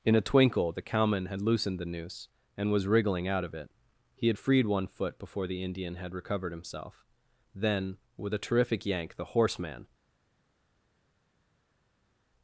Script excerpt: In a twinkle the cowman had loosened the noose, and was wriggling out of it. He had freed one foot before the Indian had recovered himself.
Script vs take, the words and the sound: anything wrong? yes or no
yes